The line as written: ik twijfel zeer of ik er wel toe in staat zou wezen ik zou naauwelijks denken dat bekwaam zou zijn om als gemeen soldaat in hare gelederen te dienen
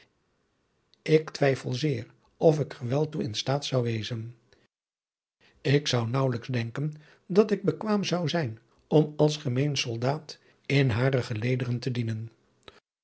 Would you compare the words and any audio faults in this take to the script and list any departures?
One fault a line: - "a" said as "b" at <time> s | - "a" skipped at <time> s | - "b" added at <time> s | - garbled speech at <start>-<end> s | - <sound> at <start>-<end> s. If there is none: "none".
- "ik" added at 7.5 s